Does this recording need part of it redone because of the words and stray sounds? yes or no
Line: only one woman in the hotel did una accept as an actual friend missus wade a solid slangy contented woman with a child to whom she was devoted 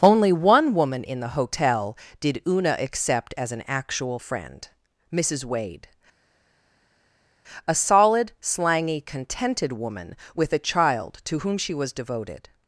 no